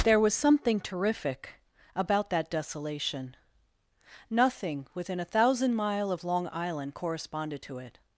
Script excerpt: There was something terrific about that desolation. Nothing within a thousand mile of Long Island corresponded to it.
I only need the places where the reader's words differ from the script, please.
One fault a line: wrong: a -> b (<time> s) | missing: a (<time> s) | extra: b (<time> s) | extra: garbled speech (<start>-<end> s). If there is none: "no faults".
no faults